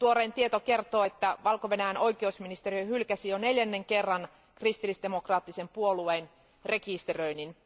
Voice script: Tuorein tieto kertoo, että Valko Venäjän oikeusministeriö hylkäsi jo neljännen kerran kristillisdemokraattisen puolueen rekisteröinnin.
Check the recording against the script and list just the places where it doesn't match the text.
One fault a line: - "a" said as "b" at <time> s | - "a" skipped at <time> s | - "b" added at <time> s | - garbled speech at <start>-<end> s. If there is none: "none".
none